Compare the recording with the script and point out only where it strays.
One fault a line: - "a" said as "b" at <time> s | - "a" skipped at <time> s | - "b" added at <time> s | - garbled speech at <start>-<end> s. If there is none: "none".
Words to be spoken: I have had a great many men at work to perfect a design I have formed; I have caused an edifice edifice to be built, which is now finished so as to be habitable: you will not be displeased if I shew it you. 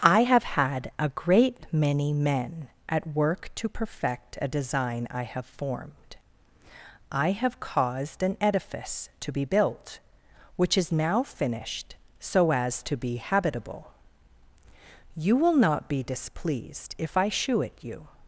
- "edifice" skipped at 9.1 s